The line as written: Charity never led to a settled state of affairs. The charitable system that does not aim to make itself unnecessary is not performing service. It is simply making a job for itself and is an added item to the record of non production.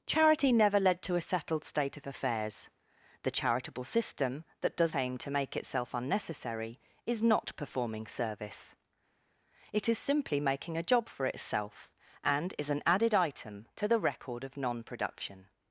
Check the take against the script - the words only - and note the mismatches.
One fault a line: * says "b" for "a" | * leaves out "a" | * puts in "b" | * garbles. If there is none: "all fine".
* leaves out "not"